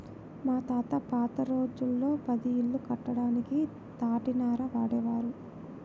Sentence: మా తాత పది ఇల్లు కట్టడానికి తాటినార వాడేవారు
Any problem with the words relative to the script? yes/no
yes